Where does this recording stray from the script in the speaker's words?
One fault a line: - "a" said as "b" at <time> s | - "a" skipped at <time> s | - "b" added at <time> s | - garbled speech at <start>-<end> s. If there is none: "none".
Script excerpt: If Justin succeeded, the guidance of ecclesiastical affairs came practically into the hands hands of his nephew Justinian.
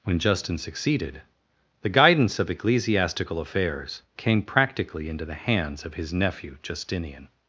- "If" said as "When" at 0.0 s
- "hands" skipped at 5.8 s